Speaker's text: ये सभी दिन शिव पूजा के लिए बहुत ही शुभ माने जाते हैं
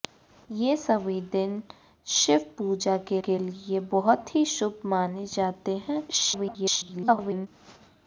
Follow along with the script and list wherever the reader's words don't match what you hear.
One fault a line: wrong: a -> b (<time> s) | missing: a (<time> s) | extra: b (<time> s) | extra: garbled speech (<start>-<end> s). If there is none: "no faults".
extra: के (3.3 s)
extra: garbled speech (6.1-7.5 s)